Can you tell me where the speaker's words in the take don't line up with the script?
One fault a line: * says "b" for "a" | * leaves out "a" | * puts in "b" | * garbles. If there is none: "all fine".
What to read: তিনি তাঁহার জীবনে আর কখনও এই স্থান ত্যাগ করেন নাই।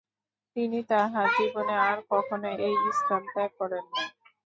all fine